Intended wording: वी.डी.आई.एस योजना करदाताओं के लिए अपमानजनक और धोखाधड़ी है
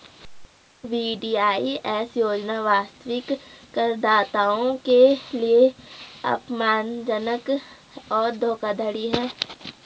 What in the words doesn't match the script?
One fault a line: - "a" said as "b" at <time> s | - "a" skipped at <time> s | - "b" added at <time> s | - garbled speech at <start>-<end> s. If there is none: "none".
- "वास्तविक" added at 2.6 s